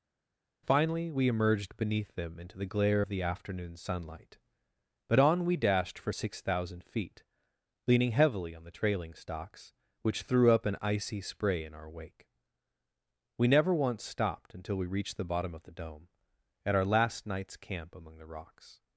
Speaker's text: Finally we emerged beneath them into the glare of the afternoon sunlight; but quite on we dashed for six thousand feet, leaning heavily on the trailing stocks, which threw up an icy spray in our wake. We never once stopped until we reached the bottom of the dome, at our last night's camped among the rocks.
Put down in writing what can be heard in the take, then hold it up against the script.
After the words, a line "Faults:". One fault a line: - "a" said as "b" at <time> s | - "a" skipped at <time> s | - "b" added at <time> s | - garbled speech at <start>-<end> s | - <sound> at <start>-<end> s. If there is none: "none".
Finally we emerged beneath them into the glare of the afternoon sunlight; but on we dashed for six thousand feet, leaning heavily on the trailing stocks, which threw up an icy spray in our wake. We never once stopped until we reached the bottom of the dome, at our last night's camp among the rocks.
Faults:
- "quite" skipped at 5.2 s
- "camped" said as "camp" at 17.6 s